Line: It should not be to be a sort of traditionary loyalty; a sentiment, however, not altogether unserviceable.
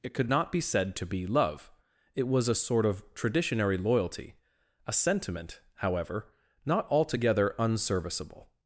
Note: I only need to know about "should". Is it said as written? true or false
false